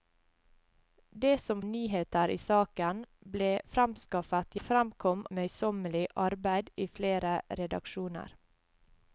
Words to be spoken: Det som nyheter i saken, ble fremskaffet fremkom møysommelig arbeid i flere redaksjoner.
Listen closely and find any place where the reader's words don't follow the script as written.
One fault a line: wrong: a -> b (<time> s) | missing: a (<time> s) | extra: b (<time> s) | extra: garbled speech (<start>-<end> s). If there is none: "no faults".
no faults